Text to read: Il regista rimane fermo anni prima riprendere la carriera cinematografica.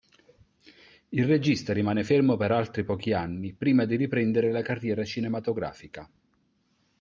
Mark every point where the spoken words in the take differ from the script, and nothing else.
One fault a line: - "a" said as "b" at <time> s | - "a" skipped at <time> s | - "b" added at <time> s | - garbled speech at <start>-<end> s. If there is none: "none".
- "per altri pochi" added at 2.4 s
- "di" added at 3.9 s